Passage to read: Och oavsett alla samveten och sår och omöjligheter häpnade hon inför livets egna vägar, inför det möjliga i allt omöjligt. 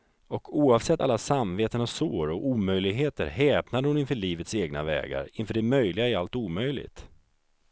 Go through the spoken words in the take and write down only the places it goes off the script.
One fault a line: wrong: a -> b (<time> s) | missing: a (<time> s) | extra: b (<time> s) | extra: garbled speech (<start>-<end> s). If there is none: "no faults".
no faults